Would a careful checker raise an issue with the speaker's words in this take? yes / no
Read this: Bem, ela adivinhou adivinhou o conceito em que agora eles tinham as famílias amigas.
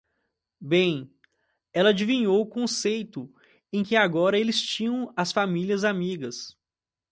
yes